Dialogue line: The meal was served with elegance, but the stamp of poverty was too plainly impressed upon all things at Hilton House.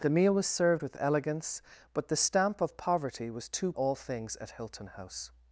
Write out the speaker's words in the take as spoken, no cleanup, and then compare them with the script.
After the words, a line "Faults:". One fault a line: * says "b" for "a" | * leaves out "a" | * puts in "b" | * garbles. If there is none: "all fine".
The meal was served with elegance, but the stamp of poverty was too all things at Hilton House.
Faults:
* leaves out "plainly impressed upon"